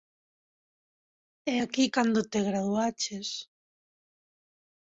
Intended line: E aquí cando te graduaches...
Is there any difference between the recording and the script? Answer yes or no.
no